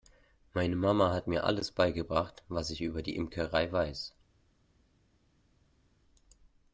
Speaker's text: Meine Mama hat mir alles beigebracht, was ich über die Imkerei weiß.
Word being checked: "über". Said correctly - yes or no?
yes